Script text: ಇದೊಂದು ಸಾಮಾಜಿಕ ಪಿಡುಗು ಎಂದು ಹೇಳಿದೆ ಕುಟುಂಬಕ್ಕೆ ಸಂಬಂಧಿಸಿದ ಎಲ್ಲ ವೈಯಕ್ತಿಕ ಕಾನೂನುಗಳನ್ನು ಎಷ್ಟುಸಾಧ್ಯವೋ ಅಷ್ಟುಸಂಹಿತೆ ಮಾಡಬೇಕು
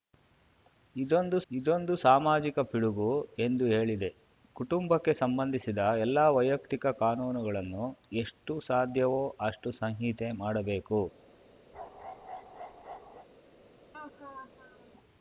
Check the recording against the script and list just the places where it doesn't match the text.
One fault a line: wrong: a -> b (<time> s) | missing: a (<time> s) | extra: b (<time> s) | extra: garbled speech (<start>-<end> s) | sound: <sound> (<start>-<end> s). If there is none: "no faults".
extra: ಇದೊಂದು (1.5 s)
sound: bark (11.7-13.3 s)
sound: laugh (13.9-14.9 s)